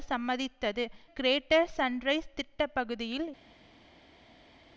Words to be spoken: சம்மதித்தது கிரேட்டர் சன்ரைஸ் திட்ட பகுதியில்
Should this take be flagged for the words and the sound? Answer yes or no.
no